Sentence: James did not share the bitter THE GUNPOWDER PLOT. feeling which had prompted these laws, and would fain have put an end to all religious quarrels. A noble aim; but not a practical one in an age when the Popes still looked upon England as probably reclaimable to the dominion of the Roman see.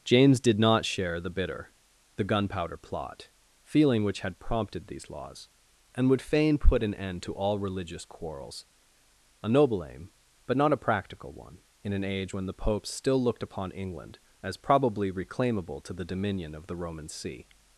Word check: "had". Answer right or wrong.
right